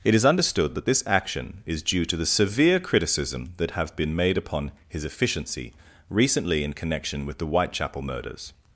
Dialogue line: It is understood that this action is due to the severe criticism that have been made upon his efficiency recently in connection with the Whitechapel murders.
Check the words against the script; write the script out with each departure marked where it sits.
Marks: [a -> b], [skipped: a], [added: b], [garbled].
It is understood that this action is due to the severe criticism that have been made upon his efficiency recently in connection with the Whitechapel murders.